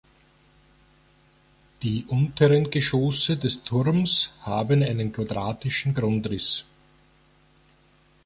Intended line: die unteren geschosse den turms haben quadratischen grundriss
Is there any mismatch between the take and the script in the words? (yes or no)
yes